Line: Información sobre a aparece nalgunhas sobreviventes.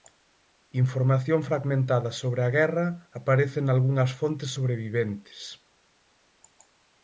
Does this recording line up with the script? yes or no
no